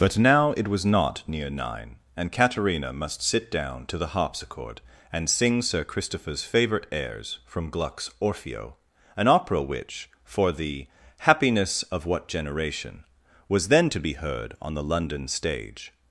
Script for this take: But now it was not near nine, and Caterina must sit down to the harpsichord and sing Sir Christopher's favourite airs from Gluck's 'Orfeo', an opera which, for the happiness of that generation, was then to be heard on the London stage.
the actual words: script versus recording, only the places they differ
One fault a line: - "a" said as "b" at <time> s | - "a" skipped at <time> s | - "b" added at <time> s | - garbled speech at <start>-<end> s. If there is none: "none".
- "that" said as "what" at 12.1 s